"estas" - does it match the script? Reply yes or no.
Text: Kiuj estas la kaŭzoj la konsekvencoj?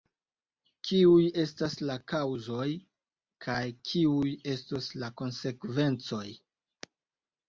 yes